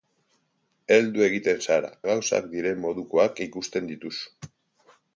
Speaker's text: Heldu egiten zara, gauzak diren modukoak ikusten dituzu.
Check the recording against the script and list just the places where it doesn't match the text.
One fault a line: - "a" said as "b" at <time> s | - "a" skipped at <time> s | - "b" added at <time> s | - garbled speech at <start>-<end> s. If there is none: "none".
none